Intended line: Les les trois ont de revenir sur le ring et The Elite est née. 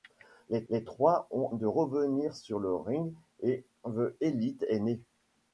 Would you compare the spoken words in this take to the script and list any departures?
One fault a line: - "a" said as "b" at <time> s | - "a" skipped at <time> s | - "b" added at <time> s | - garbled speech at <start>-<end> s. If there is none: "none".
none